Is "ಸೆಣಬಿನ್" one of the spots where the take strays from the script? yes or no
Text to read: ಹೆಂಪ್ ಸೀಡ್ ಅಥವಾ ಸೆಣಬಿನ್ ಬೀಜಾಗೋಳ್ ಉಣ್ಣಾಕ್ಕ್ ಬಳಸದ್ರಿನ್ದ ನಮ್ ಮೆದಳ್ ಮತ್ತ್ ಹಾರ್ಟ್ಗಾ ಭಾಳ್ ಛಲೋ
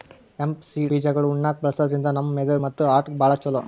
yes